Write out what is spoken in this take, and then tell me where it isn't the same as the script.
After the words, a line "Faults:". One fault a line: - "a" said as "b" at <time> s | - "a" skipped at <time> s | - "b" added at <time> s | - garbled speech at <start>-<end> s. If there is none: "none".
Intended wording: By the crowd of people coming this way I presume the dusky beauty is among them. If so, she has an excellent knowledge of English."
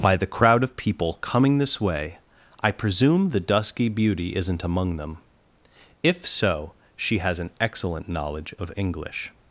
By the crowd of people coming this way I presume the dusky beauty isn't among them. If so, she has an excellent knowledge of English."
Faults:
- "is" said as "isn't" at 4.3 s